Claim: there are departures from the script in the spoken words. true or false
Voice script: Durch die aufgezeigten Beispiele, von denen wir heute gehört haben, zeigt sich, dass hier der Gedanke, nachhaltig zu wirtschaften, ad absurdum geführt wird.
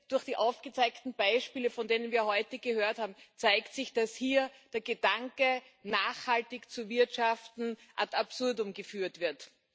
false